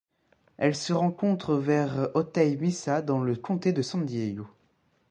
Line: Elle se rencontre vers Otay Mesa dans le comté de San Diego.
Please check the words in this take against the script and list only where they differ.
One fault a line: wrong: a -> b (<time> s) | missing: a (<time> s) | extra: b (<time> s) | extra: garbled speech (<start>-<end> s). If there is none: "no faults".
no faults